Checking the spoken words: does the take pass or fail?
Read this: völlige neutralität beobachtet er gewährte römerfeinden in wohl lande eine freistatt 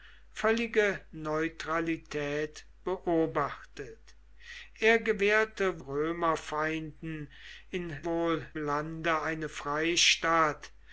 pass